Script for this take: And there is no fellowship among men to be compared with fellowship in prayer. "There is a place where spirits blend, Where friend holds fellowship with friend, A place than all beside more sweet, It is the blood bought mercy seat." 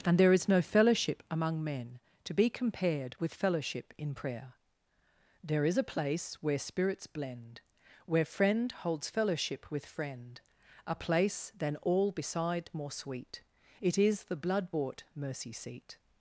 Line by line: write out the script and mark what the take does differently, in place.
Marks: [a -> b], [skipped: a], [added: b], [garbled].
And there is no fellowship among men to be compared with fellowship in prayer. "There is a place where spirits blend, Where friend holds fellowship with friend, A place than all beside more sweet, It is the blood bought mercy seat."